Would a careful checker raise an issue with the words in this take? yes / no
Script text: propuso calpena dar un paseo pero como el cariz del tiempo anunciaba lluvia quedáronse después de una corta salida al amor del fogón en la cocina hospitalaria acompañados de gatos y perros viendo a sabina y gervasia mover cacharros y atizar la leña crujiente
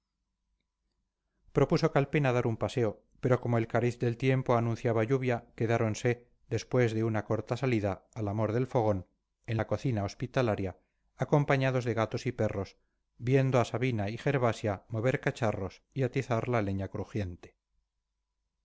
no